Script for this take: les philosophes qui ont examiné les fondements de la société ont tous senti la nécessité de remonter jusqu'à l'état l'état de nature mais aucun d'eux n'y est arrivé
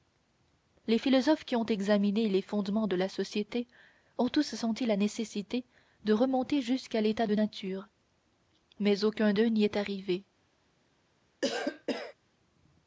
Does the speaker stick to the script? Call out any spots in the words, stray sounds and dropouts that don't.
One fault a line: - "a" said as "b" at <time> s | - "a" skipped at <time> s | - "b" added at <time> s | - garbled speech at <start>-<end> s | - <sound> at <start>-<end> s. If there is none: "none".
- "l'état" skipped at 7.3 s
- cough at 11.4-12.1 s